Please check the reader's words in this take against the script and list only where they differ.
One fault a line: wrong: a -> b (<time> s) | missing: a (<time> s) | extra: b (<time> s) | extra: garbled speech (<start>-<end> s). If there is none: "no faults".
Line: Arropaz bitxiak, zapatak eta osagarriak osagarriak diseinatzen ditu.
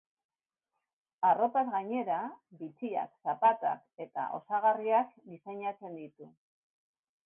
extra: gainera (1.8 s)
missing: osagarriak (5.2 s)